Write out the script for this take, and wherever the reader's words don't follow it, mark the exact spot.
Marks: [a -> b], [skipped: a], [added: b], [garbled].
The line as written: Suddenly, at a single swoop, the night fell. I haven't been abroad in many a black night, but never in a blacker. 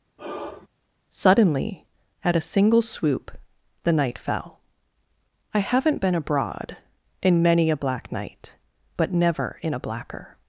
Suddenly, at a single swoop, the night fell. I haven't been abroad in many a black night, but never in a blacker.